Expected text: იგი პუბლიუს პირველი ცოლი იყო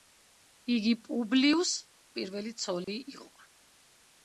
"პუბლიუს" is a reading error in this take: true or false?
false